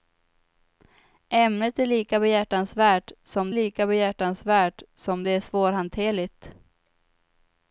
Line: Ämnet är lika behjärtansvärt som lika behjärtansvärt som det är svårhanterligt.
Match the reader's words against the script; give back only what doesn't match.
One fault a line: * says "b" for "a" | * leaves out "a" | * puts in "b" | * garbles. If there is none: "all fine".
all fine